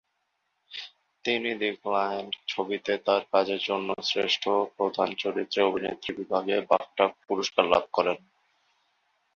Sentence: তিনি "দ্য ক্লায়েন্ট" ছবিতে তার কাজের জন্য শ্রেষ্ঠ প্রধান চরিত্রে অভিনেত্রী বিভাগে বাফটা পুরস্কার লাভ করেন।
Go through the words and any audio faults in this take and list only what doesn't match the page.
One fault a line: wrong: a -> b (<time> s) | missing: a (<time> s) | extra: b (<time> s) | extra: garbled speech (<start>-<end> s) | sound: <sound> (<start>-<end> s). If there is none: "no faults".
no faults